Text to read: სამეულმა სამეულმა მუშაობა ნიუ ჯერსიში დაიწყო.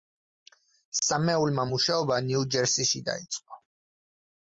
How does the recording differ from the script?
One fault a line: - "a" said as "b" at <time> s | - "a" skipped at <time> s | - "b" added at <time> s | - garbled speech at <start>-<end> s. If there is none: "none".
- "სამეულმა" skipped at 1.6 s